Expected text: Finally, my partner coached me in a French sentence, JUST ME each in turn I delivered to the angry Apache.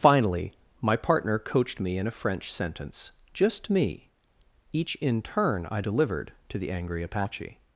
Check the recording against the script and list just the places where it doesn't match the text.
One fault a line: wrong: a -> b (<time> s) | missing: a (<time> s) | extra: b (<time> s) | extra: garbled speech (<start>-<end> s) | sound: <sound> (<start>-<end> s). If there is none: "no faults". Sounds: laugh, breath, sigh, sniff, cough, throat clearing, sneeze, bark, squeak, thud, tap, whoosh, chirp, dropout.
no faults